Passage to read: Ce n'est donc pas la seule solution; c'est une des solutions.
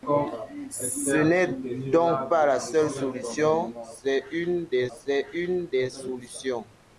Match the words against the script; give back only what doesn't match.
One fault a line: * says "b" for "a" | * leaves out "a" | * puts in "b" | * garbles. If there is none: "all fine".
* puts in "c'est une des"